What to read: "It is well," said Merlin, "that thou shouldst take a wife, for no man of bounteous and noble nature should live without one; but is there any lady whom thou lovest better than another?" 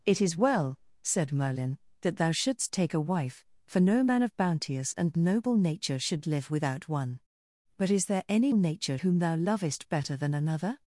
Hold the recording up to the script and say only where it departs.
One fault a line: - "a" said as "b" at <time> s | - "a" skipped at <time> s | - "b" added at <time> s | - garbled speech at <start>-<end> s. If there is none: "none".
- "lady" said as "nature" at 8.5 s